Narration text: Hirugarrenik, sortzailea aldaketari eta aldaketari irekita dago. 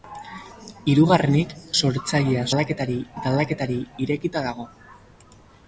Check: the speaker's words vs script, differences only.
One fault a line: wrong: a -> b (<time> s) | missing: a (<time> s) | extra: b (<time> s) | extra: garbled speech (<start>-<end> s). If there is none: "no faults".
no faults